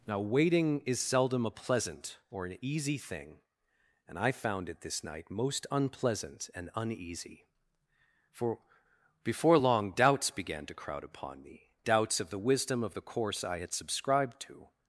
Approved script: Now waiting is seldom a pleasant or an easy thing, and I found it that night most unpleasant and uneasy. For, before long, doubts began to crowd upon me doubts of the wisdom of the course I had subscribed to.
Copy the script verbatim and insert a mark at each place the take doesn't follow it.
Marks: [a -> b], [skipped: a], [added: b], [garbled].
Now waiting is seldom a pleasant or an easy thing, and I found it [that -> this] night most unpleasant and uneasy. For, before long, doubts began to crowd upon me doubts of the wisdom of the course I had subscribed to.